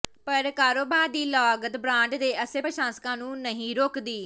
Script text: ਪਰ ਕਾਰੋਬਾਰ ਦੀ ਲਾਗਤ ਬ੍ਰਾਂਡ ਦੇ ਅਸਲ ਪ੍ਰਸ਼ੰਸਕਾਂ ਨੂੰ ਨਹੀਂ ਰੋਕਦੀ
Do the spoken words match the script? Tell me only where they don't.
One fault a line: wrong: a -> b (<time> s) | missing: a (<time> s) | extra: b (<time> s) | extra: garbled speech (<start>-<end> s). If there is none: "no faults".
no faults